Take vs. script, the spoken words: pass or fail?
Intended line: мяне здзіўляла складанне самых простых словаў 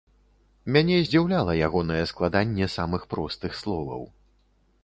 fail